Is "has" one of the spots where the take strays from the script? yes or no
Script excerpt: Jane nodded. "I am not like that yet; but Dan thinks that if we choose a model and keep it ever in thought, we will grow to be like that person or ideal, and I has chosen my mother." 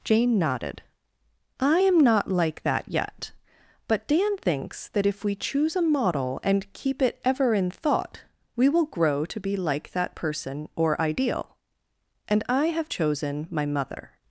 yes